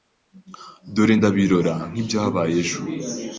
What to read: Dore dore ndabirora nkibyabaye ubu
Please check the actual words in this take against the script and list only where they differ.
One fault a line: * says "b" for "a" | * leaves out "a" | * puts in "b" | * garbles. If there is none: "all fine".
* leaves out "dore"
* says "ejo" for "ubu"